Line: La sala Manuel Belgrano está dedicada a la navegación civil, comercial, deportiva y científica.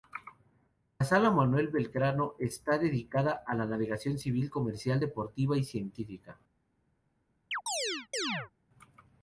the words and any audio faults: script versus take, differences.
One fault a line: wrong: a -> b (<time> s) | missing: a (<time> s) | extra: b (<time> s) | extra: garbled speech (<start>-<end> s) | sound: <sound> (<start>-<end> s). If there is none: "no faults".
sound: chirp (7.5-8.5 s)